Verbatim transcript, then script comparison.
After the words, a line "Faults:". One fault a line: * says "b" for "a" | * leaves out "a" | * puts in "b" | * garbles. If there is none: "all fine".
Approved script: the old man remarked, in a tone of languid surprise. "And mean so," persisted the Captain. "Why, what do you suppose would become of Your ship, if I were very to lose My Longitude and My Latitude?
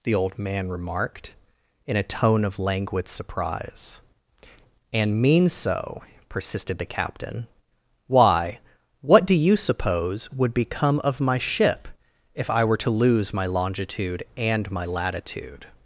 the old man remarked, in a tone of languid surprise. "And mean so," persisted the Captain. "Why, what do you suppose would become of My ship, if I were to lose My Longitude and My Latitude?
Faults:
* says "My" for "Your"
* leaves out "very"